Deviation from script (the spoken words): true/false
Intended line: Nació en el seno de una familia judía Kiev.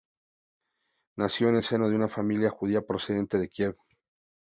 true